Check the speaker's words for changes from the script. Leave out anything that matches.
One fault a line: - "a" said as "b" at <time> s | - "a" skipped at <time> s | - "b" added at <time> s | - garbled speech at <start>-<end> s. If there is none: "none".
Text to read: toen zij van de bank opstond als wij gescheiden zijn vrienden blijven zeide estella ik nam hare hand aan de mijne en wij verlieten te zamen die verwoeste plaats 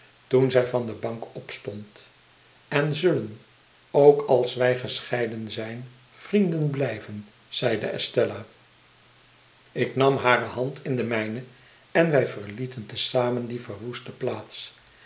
- "en zullen ook" added at 2.7 s
- "aan" said as "in" at 10.8 s